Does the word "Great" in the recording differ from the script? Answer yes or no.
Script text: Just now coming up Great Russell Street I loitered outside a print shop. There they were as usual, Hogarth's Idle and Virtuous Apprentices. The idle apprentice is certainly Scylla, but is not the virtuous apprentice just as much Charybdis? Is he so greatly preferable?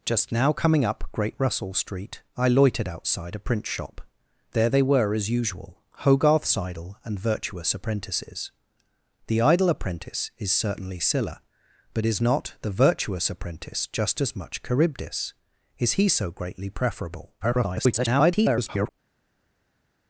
no